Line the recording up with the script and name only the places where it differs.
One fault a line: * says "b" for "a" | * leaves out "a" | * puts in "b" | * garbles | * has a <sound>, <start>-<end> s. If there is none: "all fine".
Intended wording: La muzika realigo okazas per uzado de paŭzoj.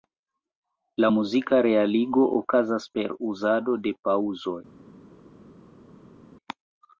all fine